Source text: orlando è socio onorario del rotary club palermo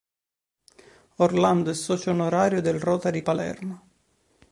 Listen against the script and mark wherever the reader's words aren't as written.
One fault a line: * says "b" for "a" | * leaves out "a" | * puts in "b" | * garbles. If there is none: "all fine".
* leaves out "club"